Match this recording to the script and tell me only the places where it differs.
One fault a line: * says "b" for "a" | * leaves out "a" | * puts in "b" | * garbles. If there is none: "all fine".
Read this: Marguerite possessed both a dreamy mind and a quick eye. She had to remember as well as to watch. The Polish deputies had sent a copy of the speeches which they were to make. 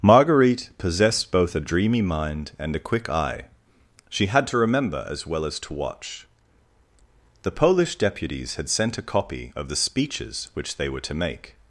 all fine